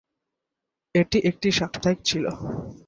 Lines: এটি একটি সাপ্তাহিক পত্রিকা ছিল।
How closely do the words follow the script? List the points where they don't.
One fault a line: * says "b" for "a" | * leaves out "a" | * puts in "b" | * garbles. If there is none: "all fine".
* leaves out "পত্রিকা"